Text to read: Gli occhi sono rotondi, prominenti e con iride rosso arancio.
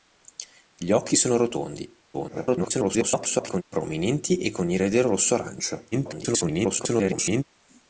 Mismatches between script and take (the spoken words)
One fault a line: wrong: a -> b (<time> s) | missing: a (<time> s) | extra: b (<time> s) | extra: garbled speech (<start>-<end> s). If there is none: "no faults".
extra: garbled speech (2.1-3.6 s)
extra: garbled speech (5.9-7.4 s)